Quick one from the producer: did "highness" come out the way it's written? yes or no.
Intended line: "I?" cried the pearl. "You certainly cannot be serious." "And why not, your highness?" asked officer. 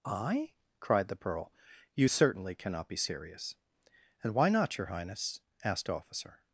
yes